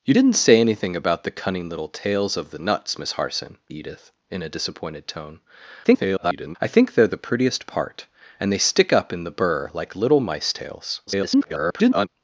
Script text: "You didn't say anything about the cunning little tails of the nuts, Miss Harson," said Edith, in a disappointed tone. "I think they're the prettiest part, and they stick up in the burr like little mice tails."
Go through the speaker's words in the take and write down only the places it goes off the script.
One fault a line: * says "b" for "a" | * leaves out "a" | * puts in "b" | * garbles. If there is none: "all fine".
* leaves out "said"
* garbles
* garbles